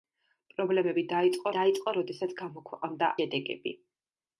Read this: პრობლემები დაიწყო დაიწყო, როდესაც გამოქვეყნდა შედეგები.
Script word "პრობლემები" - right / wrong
right